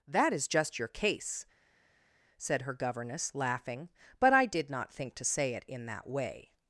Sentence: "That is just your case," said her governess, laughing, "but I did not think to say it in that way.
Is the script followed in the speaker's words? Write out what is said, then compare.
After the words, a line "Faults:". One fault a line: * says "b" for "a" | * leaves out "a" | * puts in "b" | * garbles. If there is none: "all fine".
"That is just your case," said her governess, laughing, "but I did not think to say it in that way.
Faults:
all fine